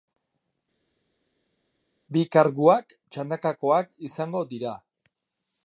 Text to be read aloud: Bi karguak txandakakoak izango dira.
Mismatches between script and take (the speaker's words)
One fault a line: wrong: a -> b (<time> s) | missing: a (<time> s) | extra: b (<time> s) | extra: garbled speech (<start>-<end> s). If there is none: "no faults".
no faults